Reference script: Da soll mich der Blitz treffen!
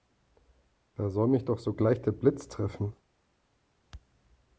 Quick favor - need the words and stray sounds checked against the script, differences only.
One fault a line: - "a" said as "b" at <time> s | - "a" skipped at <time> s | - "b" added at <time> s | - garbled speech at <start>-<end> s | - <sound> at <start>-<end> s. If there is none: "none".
- "doch sogleich" added at 1.4 s